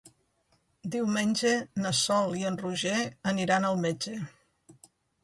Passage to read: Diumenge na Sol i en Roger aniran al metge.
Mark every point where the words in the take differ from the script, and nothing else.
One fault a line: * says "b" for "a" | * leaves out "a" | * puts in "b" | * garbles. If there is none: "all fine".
all fine